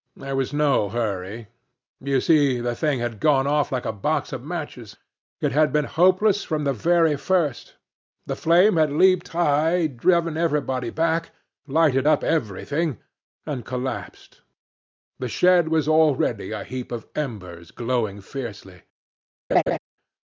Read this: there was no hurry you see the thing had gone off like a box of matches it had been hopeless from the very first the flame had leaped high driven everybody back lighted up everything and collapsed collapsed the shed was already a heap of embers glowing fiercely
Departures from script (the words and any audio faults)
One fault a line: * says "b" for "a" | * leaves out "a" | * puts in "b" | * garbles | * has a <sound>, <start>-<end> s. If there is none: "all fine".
* leaves out "collapsed"
* has a laugh, 19.5-19.8 s